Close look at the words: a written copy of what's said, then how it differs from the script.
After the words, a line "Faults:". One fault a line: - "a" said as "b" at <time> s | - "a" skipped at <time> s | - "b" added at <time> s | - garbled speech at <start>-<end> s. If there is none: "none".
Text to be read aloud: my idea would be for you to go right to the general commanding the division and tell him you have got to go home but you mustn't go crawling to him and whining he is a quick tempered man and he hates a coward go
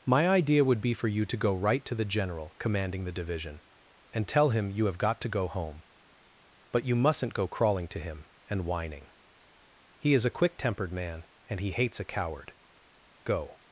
my idea would be for you to go right to the general commanding the division and tell him you have got to go home but you mustn't go crawling to him and whining he is a quick tempered man and he hates a coward go
Faults:
none